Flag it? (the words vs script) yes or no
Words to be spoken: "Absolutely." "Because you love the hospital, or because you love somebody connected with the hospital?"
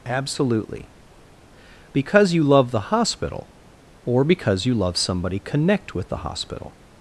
yes